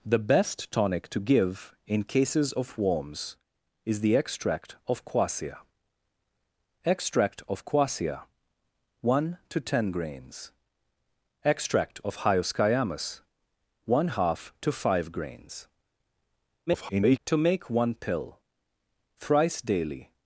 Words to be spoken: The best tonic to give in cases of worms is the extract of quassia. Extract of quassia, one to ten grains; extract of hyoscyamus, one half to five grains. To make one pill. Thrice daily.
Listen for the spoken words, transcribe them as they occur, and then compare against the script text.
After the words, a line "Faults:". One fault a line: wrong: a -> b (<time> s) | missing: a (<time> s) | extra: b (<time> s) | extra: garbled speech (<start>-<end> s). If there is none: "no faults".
The best tonic to give in cases of worms is the extract of quassia. Extract of quassia, one to ten grains; extract of hyoscyamus, one half to five grains. [garbled] To make one pill. Thrice daily.
Faults:
extra: garbled speech (16.7-17.2 s)